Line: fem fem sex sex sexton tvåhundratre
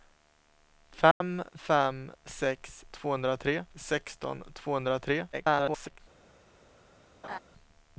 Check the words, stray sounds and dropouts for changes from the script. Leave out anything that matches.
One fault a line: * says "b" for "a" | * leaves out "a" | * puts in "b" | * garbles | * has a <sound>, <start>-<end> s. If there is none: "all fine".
* has a dropout, 1.1-1.2 s
* says "tvåhundratre" for "sex"
* garbles
* has a laugh, 7.2-7.4 s